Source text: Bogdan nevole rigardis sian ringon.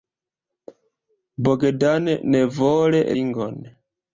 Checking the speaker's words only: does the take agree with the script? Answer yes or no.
no